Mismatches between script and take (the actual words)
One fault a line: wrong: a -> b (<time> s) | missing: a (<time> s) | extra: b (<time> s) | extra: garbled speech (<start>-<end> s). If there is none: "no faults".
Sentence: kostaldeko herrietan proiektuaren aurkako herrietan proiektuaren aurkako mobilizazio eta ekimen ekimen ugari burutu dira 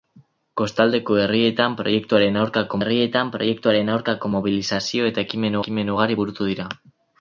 no faults